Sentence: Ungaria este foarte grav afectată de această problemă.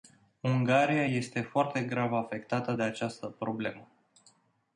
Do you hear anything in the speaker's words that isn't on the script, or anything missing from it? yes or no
no